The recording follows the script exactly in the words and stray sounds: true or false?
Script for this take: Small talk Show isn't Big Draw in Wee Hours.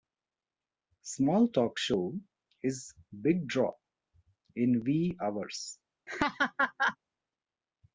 false